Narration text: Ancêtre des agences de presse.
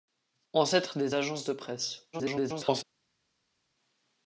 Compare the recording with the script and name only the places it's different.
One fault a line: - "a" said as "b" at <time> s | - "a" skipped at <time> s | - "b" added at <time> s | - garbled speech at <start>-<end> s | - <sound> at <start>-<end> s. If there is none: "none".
- garbled speech at 2.1-2.8 s